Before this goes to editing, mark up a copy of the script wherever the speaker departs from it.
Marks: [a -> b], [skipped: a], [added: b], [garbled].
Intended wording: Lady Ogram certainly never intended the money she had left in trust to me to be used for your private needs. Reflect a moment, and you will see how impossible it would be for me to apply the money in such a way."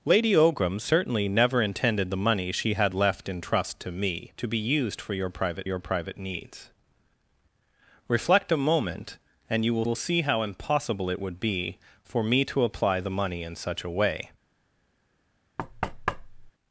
Lady Ogram certainly never intended the money she had left in trust to me to be used for your private [added: your private] needs. Reflect a moment, and you will [added: will] see how impossible it would be for me to apply the money in such a way."